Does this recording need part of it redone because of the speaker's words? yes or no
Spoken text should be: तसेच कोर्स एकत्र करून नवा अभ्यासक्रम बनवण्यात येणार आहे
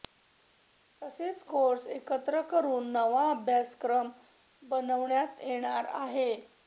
no